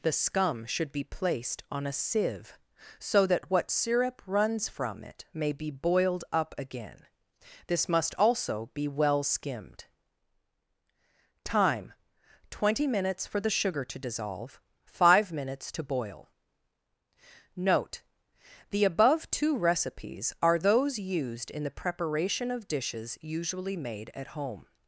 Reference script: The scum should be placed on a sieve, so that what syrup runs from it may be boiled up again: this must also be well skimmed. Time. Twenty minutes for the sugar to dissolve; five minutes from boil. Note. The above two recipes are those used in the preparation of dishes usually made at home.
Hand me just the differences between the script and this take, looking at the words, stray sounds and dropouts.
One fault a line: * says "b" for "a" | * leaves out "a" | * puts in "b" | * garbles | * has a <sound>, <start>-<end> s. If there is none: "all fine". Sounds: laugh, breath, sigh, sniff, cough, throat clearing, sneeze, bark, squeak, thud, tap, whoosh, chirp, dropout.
* says "to" for "from"